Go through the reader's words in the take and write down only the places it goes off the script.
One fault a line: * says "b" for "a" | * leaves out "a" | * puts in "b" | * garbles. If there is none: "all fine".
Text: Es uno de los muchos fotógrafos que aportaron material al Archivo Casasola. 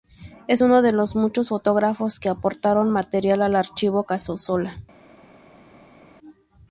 all fine